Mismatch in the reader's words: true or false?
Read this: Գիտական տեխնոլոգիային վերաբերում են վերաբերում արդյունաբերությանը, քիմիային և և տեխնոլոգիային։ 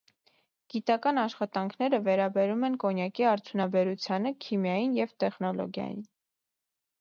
true